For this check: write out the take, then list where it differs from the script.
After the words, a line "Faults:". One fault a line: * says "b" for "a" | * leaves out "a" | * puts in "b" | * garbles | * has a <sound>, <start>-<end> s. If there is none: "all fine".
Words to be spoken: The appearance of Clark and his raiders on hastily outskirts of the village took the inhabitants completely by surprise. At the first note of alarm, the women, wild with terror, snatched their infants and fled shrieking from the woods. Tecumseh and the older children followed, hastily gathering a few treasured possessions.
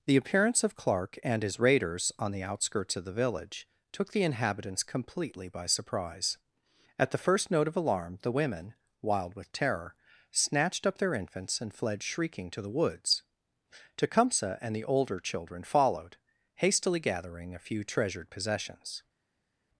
The appearance of Clark and his raiders on the outskirts of the village took the inhabitants completely by surprise. At the first note of alarm, the women, wild with terror, snatched up their infants and fled shrieking to the woods. Tecumseh and the older children followed, hastily gathering a few treasured possessions.
Faults:
* says "the" for "hastily"
* puts in "up"
* says "to" for "from"